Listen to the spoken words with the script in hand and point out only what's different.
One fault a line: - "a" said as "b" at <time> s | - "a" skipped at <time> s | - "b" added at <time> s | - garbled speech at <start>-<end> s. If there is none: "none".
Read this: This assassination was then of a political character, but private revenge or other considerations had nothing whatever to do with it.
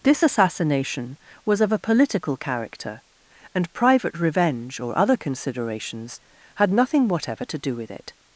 - "then" skipped at 1.6 s
- "but" said as "and" at 3.5 s